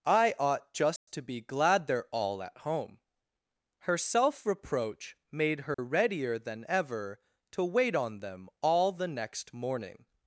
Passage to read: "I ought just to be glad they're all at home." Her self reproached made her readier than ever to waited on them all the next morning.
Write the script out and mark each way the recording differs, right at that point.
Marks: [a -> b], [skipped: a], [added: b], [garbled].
"I ought just to be glad they're all at home." Her self [reproached -> reproach] made her readier than ever to [waited -> wait] on them all the next morning.